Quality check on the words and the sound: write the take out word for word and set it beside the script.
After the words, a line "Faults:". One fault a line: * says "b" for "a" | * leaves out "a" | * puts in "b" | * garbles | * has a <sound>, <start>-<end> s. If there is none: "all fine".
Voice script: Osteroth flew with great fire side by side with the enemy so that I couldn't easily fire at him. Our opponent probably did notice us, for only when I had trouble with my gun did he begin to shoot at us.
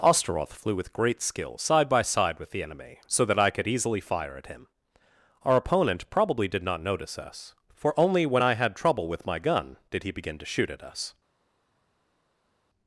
Osteroth flew with great skill side by side with the enemy so that I could easily fire at him. Our opponent probably did not notice us, for only when I had trouble with my gun did he begin to shoot at us.
Faults:
* says "skill" for "fire"
* says "could" for "couldn't"
* puts in "not"